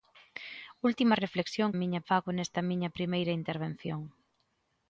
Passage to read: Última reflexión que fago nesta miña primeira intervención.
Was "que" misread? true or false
true